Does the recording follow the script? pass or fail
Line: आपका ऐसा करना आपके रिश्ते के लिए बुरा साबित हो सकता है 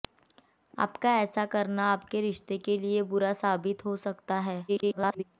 fail